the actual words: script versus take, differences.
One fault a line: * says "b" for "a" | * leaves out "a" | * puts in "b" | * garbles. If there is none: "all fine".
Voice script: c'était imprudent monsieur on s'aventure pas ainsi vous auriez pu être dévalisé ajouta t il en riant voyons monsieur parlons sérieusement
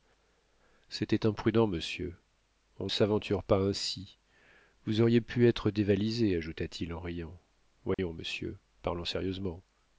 all fine